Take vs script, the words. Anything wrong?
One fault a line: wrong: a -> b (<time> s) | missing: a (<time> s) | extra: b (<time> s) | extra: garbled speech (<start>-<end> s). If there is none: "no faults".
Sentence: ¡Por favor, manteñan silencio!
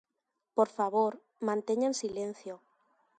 no faults